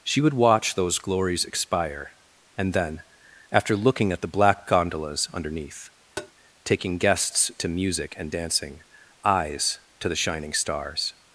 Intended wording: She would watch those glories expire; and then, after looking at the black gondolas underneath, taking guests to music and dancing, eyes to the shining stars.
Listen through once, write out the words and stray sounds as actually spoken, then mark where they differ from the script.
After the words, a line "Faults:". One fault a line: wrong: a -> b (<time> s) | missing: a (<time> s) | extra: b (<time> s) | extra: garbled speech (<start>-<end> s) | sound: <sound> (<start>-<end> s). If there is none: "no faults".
She would watch those glories expire; and then, after looking at the black gondolas underneath, taking guests to music and dancing, eyes to the shining stars.
Faults:
sound: tap (6.2-6.3 s)